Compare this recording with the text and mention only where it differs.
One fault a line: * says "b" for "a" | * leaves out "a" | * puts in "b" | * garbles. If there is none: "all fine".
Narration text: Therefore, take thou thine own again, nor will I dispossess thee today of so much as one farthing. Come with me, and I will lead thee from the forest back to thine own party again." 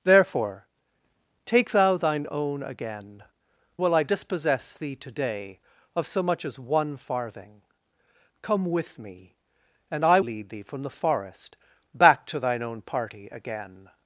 * leaves out "nor"
* leaves out "will"